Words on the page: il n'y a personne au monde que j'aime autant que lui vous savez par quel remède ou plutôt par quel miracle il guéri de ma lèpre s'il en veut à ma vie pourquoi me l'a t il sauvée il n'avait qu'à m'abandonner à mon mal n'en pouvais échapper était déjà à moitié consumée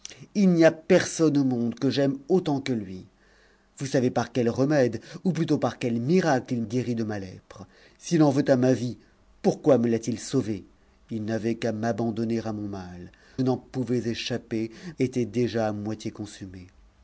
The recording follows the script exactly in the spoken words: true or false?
true